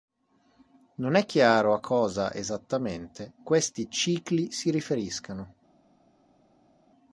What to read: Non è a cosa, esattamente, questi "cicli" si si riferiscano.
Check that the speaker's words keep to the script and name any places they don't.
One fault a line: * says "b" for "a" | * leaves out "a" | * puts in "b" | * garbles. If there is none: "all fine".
* puts in "chiaro"
* leaves out "si"